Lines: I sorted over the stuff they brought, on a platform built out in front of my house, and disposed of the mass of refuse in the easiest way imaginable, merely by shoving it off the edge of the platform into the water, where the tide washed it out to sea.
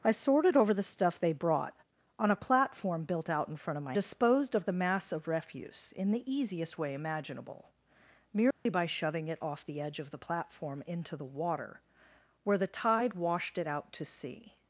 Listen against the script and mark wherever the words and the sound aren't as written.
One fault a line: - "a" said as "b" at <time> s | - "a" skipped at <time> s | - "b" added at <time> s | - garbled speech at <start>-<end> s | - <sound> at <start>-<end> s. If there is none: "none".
- "house and" skipped at 3.9 s
- dropout at 8.5-8.7 s